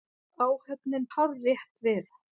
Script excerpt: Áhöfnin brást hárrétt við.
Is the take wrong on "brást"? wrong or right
wrong